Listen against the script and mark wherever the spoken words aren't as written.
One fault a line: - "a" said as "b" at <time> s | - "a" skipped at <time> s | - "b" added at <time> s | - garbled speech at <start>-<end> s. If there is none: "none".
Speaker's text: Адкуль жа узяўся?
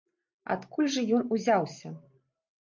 - "ён" added at 1.2 s